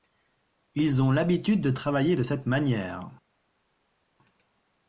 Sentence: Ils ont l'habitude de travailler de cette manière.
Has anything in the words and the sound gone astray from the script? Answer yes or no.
no